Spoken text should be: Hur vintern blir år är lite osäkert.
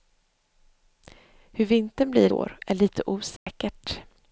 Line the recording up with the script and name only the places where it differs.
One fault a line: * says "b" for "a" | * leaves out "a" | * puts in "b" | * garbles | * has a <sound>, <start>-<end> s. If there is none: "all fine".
* has a dropout, 3.4-3.5 s